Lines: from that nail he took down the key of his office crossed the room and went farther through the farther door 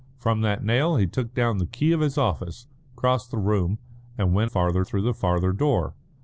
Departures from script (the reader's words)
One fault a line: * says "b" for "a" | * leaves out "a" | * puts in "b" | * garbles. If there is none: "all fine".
all fine